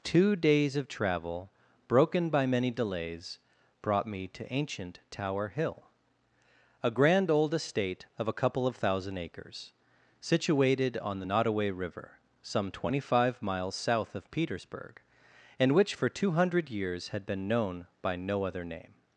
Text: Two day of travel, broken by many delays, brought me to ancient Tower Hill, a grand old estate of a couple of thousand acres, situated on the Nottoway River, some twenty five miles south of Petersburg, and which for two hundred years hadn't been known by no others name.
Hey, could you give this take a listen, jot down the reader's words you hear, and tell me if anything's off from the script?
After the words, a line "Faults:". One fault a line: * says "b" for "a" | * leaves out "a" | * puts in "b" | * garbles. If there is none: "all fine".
Two days of travel, broken by many delays, brought me to ancient Tower Hill, a grand old estate of a couple of thousand acres, situated on the Nottoway River, some twenty five miles south of Petersburg, and which for two hundred years had been known by no other name.
Faults:
* says "days" for "day"
* says "had" for "hadn't"
* says "other" for "others"